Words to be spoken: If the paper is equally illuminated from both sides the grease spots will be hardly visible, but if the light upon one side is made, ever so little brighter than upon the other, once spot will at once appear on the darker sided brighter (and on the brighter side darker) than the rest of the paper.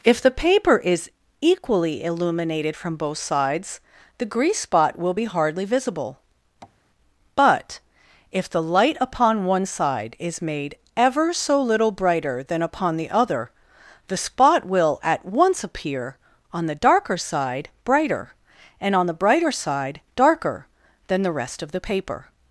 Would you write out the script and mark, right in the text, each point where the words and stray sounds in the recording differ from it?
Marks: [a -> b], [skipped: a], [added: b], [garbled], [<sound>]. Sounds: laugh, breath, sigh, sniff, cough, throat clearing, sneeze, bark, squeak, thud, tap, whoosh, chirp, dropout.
If the paper is equally illuminated from both sides the grease [spots -> spot] will be hardly visible, [tap] but if the light upon one side is made, ever so little brighter than upon the other, [once -> the] spot will at once appear on the darker [sided -> side] brighter (and on the brighter side darker) than the rest of the paper.